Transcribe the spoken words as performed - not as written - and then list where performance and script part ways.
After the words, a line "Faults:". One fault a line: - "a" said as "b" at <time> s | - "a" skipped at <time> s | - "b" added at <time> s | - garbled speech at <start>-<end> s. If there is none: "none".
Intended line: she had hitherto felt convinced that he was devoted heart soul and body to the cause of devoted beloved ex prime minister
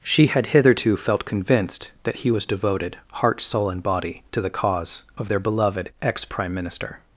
she had hitherto felt convinced that he was devoted heart soul and body to the cause of their beloved ex prime minister
Faults:
- "devoted" said as "their" at 5.3 s